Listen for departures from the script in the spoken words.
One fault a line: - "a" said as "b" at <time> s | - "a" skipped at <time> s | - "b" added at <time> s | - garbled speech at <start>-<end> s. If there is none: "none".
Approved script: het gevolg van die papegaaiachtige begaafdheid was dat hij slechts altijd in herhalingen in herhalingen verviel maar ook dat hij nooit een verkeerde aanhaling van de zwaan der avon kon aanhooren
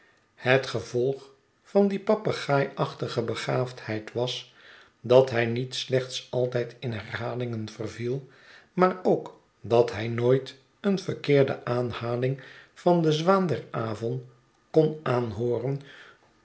- "niet" added at 5.4 s
- "in herhalingen" skipped at 7.7 s